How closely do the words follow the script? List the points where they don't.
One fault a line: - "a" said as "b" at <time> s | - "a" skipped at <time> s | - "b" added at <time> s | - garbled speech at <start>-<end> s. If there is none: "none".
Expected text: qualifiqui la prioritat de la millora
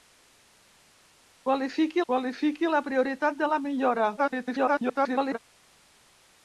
- "qualifiqui" added at 2.1 s
- garbled speech at 4.2-5.4 s